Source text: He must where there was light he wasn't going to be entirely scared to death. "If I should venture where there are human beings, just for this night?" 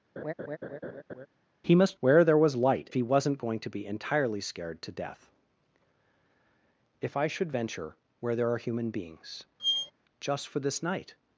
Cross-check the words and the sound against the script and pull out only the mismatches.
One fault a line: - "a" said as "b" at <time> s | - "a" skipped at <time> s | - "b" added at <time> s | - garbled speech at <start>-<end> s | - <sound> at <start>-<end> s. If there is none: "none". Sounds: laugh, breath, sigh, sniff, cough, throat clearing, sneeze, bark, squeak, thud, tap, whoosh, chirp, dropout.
- laugh at 0.2-1.3 s
- squeak at 9.6-9.9 s